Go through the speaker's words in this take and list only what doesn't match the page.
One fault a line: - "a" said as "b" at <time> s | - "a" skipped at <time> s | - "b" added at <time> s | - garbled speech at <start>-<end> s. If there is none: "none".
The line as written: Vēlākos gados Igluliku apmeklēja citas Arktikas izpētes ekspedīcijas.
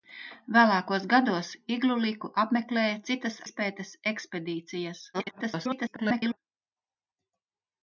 - "Arktikas" skipped at 3.4 s
- garbled speech at 5.1-6.4 s